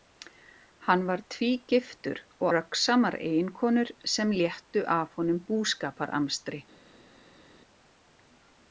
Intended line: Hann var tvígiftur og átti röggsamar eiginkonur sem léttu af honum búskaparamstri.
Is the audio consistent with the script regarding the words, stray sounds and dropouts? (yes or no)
no